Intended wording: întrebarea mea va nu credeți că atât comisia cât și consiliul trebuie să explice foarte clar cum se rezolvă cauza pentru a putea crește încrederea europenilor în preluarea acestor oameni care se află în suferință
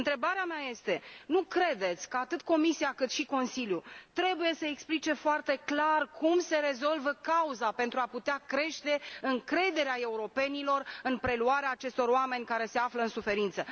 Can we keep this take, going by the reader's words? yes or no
no